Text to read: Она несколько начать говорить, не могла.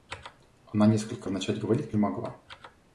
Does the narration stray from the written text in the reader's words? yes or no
no